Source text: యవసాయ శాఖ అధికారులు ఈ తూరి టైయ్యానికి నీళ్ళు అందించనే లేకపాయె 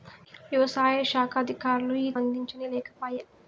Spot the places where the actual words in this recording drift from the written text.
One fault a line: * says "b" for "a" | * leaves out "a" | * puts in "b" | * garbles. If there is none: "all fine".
* leaves out "తూరి టైయ్యానికి నీళ్ళు"